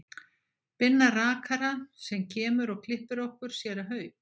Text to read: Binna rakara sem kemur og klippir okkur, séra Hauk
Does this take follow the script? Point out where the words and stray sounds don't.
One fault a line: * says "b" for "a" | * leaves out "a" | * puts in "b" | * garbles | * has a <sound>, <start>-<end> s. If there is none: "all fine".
all fine